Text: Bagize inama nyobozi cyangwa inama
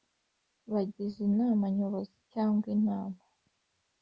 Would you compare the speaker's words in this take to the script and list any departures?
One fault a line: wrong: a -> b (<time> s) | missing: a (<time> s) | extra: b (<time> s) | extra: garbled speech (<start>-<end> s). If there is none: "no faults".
no faults